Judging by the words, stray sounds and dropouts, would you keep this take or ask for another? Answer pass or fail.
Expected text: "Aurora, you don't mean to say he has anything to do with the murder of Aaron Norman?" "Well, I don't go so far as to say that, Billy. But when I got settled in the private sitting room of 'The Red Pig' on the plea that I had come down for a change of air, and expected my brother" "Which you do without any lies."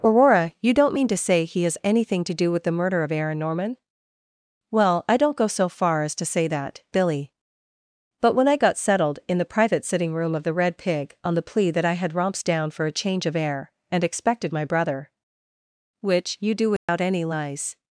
fail